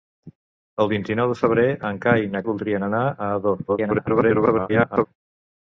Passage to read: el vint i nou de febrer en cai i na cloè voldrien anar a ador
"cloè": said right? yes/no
no